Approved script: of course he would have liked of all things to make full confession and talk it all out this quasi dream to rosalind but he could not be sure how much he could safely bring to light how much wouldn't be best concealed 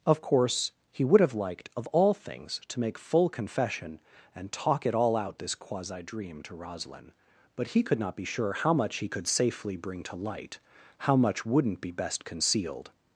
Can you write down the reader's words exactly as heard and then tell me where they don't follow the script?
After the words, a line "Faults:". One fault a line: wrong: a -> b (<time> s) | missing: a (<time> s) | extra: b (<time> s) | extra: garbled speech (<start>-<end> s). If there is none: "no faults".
of course he would have liked of all things to make full confession and talk it all out this quasi dream to rosalind but he could not be sure how much he could safely bring to light how much wouldn't be best concealed
Faults:
no faults